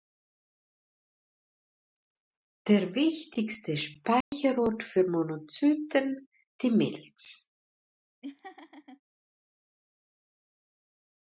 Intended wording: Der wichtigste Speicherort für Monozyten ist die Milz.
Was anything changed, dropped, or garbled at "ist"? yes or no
yes